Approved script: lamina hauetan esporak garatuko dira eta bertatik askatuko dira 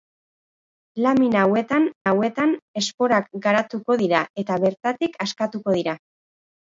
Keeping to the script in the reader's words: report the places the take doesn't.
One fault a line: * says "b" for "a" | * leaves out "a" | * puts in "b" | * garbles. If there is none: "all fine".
* puts in "hauetan"